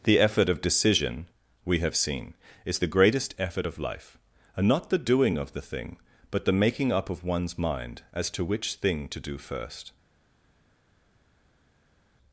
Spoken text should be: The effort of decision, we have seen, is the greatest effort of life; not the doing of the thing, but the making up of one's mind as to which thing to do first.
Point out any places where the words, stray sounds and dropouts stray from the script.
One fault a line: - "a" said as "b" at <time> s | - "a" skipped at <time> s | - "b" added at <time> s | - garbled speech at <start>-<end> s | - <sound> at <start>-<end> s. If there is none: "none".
- "and" added at 4.5 s